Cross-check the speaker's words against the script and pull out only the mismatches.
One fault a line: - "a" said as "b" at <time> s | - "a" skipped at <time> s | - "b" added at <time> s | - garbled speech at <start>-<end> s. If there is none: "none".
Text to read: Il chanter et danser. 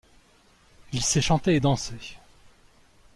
- "sait" added at 1.0 s